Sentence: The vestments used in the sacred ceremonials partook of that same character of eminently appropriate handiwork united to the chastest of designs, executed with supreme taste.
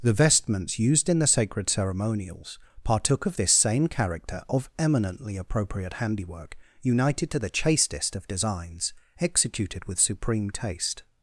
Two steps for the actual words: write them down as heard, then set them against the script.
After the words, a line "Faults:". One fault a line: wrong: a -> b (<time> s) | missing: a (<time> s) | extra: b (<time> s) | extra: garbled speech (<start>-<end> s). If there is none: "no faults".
The vestments used in the sacred ceremonials partook of this same character of eminently appropriate handiwork united to the chastest of designs, executed with supreme taste.
Faults:
wrong: that -> this (3.3 s)